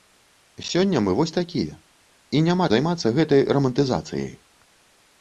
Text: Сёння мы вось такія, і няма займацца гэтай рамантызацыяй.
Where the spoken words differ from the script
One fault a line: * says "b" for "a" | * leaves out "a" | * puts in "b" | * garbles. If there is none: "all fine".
all fine